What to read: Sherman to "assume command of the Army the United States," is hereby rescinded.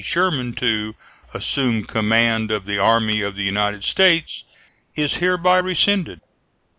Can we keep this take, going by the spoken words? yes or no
no